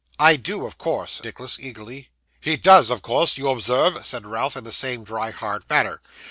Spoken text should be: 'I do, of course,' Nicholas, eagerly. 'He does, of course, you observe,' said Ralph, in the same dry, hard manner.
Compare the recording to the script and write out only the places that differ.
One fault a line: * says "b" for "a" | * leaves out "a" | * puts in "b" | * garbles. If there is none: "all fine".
all fine